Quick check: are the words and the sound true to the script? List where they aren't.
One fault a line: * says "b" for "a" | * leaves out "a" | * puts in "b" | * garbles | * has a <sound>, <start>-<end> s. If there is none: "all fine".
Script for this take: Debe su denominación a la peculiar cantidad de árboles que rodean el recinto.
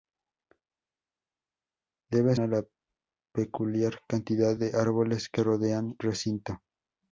* leaves out "su denominación"
* leaves out "el"